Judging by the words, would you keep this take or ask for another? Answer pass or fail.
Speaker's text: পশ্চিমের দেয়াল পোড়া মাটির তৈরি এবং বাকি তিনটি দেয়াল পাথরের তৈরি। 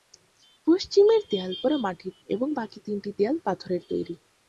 fail